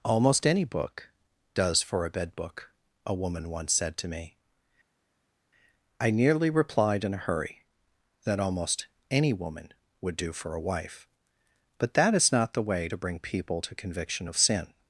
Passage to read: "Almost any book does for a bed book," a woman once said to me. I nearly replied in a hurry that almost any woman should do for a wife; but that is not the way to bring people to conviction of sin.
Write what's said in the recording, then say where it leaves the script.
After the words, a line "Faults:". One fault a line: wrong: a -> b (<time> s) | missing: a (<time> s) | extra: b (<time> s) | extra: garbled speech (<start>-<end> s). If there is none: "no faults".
"Almost any book does for a bed book," a woman once said to me. I nearly replied in a hurry that almost any woman would do for a wife; but that is not the way to bring people to conviction of sin.
Faults:
wrong: should -> would (10.0 s)